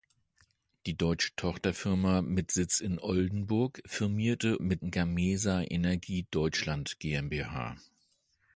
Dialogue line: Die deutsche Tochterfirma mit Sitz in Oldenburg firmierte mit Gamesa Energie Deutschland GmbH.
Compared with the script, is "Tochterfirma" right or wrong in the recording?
right